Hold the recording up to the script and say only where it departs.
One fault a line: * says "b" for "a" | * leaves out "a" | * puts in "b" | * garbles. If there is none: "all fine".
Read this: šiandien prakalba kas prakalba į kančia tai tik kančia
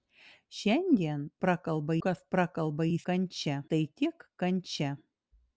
all fine